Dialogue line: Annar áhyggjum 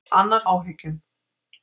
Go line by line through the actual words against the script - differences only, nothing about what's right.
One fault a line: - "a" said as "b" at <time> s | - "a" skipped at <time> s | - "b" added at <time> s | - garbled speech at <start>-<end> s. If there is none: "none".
none